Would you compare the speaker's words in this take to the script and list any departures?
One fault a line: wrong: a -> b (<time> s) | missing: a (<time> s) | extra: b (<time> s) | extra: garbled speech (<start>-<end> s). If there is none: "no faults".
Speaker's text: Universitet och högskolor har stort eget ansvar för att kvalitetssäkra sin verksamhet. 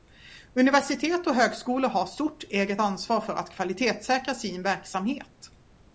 no faults